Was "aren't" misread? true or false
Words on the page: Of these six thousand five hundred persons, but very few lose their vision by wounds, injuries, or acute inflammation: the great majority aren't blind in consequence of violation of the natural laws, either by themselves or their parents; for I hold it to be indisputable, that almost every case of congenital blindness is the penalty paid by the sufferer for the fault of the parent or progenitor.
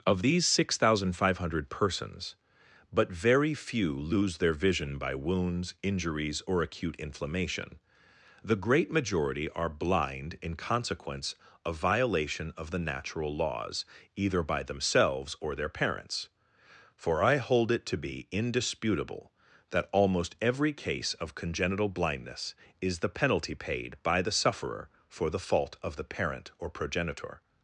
true